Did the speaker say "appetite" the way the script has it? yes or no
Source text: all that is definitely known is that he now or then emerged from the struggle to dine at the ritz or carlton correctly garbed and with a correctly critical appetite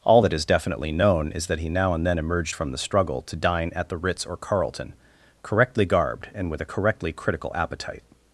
yes